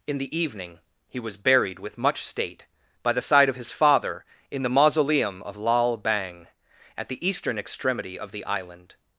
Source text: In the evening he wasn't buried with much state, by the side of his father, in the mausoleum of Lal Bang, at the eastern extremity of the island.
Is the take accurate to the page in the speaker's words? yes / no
no